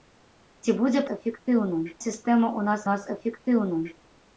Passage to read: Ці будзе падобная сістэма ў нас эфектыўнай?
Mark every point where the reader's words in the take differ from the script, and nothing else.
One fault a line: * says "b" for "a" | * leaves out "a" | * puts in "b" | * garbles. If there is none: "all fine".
* says "эфектыўнай" for "падобная"
* puts in "нас"